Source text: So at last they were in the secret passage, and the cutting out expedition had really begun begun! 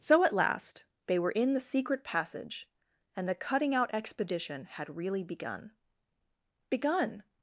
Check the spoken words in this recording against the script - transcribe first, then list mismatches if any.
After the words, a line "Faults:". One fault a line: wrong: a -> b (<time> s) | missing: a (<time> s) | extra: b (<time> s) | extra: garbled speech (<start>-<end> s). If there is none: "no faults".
So at last they were in the secret passage, and the cutting out expedition had really begun begun!
Faults:
no faults